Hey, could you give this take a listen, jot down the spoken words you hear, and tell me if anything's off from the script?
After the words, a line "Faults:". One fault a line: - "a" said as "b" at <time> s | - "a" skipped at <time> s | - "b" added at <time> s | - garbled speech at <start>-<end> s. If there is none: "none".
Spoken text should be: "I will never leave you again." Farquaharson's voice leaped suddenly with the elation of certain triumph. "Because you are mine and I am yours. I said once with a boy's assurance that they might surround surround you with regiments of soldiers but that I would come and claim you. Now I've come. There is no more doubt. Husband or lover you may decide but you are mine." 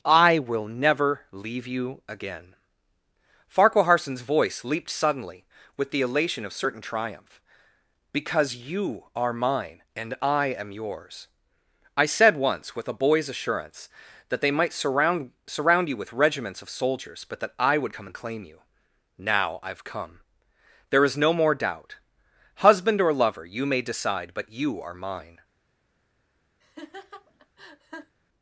"I will never leave you again." Farquaharson's voice leaped suddenly with the elation of certain triumph. "Because you are mine and I am yours. I said once with a boy's assurance that they might surround surround you with regiments of soldiers but that I would come and claim you. Now I've come. There is no more doubt. Husband or lover you may decide but you are mine."
Faults:
none